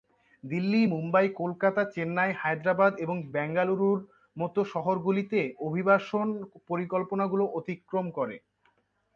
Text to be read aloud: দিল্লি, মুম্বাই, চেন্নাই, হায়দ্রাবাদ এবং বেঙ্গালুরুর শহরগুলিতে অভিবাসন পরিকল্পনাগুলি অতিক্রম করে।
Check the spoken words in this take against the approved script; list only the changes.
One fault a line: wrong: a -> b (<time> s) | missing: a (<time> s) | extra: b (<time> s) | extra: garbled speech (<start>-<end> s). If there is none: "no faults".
extra: কলকাতা (1.4 s)
extra: মতো (4.4 s)